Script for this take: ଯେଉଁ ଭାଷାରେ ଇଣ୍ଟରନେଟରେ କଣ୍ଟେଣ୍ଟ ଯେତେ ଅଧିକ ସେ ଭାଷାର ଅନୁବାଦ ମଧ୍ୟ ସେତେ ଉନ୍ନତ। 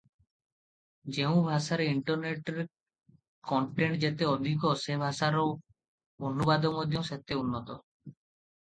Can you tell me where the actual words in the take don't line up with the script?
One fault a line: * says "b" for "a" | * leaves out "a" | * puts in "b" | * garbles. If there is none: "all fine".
all fine